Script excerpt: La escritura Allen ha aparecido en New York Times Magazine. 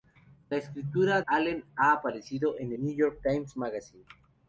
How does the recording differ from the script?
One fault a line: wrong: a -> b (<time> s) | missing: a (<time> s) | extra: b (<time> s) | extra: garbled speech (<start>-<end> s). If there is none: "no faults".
no faults